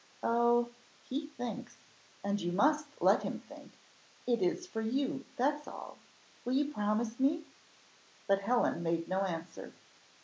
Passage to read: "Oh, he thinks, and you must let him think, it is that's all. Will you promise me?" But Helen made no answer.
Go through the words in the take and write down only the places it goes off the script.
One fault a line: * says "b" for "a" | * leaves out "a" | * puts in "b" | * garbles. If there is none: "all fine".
* puts in "for you"